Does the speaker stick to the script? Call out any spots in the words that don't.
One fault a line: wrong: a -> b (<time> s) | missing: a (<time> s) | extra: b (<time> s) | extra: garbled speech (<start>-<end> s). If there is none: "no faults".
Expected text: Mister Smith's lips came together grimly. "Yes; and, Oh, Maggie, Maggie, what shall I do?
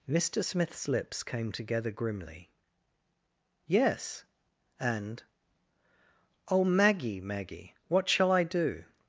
no faults